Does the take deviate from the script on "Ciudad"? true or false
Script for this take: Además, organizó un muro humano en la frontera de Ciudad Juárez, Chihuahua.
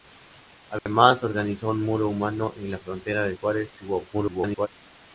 true